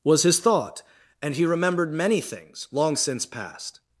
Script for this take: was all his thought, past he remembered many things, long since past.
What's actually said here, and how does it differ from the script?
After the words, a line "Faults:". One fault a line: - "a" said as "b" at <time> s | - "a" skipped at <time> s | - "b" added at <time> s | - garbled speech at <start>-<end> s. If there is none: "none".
was his thought, and he remembered many things, long since past.
Faults:
- "all" skipped at 0.2 s
- "past" said as "and" at 1.2 s